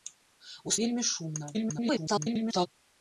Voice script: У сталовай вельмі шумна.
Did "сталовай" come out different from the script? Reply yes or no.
yes